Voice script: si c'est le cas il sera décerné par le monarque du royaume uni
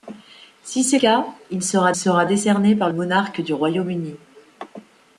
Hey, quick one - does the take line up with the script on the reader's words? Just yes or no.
no